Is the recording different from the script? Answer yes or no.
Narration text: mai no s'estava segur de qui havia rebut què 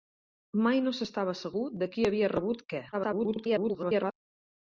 yes